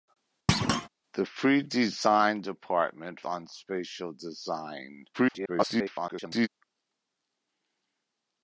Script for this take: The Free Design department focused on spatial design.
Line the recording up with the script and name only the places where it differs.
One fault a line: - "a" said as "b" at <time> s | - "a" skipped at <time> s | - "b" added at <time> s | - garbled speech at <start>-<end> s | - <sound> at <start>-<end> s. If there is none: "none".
- thud at 0.5-0.9 s
- "focused" skipped at 3.2 s
- garbled speech at 5.1-6.5 s